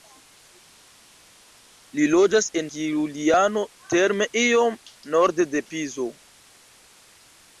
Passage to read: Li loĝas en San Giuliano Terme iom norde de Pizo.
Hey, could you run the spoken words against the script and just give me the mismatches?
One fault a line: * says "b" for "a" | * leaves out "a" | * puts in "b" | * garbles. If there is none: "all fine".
* leaves out "San"